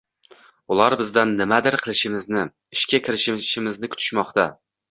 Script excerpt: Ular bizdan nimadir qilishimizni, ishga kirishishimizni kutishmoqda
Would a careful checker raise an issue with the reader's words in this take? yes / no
no